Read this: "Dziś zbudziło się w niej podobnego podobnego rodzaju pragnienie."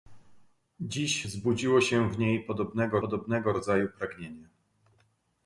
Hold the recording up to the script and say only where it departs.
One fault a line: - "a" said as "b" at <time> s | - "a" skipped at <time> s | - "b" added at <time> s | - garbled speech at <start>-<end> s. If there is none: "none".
none